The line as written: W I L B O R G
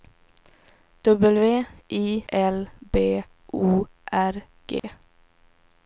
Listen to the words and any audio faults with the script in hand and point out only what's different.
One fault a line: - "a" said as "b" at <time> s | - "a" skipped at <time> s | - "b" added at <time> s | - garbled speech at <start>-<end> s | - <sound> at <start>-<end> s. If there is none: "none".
- dropout at 4.8-4.8 s